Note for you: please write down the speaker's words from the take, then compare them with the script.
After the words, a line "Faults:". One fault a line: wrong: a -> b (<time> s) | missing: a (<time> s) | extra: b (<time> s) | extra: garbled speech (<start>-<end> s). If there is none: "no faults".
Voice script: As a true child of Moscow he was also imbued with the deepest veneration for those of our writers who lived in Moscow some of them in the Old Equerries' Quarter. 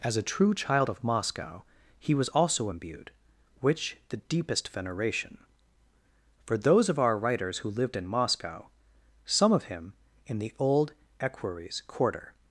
As a true child of Moscow he was also imbued which the deepest veneration for those of our writers who lived in Moscow some of him in the Old Equerries' Quarter.
Faults:
wrong: with -> which (3.6 s)
wrong: them -> him (9.6 s)